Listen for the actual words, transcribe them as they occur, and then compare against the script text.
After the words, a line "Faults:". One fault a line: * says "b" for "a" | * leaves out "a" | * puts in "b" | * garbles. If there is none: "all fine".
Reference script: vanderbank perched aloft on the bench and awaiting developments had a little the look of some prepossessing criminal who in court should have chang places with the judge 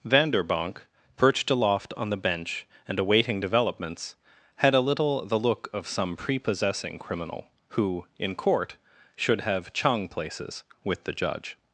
vanderbank perched aloft on the bench and awaiting developments had a little the look of some prepossessing criminal who in court should have chang places with the judge
Faults:
all fine